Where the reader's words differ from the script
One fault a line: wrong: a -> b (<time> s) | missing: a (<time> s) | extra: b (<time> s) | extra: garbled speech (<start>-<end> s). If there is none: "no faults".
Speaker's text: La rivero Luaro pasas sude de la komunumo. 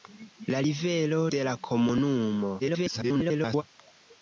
missing: Luaro pasas sude (1.2 s)
extra: garbled speech (2.6-3.6 s)